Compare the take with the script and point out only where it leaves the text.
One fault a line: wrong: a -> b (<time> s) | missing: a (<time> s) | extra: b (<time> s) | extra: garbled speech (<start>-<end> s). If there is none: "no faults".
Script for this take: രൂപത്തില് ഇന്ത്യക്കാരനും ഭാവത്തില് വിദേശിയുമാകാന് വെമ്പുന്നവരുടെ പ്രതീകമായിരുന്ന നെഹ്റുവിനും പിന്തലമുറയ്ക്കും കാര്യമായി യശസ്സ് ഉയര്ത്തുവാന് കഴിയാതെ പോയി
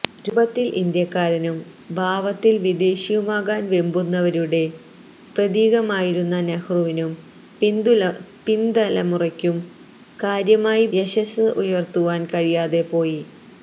no faults